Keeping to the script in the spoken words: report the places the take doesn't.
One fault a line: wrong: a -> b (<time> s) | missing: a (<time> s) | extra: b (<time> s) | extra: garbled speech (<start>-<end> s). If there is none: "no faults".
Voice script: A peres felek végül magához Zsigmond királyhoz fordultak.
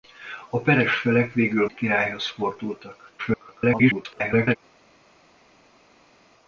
missing: magához Zsigmond (1.7 s)
extra: garbled speech (3.2-4.6 s)